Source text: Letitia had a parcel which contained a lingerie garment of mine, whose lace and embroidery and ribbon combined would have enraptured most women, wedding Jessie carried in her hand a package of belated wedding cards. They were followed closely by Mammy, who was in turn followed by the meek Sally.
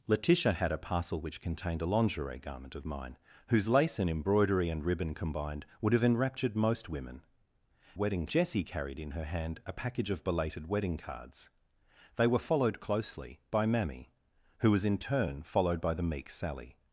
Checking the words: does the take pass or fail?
pass